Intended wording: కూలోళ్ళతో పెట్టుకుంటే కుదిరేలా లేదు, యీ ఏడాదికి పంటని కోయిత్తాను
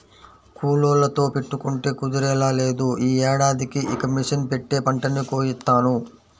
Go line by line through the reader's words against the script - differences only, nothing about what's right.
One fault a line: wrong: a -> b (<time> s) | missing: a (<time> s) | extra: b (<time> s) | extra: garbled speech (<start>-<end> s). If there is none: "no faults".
extra: ఇక మిషన్ పెట్టే (3.9 s)